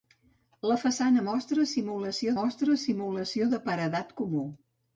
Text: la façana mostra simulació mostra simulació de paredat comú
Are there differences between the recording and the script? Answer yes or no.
no